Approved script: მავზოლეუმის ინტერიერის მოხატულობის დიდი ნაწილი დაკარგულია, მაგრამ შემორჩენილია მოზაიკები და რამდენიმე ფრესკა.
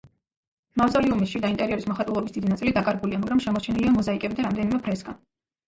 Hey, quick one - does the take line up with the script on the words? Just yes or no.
no